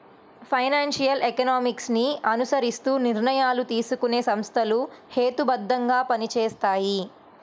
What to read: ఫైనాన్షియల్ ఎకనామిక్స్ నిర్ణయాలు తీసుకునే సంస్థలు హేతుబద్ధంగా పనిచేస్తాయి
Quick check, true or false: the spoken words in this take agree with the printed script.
false